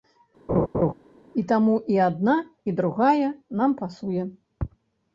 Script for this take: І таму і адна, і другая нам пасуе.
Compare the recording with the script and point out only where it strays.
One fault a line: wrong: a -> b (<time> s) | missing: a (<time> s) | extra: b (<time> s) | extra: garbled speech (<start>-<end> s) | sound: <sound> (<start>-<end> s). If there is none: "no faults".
sound: laugh (0.5-0.9 s)